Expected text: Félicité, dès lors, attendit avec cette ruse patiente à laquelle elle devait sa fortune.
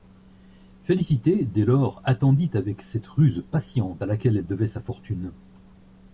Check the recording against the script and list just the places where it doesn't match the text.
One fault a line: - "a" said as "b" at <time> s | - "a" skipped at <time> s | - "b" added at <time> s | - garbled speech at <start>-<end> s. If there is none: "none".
none